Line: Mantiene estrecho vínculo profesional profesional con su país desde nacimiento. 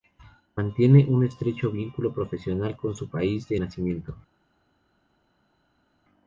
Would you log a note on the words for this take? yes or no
yes